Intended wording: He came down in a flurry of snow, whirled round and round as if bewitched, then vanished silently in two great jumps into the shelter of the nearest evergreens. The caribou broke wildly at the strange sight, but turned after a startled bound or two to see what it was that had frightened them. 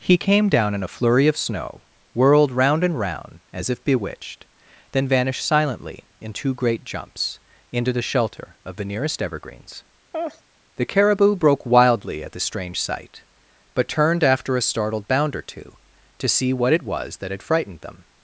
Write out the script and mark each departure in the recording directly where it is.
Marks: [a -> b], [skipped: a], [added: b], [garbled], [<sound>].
He came down in a flurry of snow, whirled round and round as if bewitched, then vanished silently in two great jumps into the shelter of the nearest evergreens. [laugh] The caribou broke wildly at the strange sight, but turned after a startled bound or two to see what it was that had frightened them.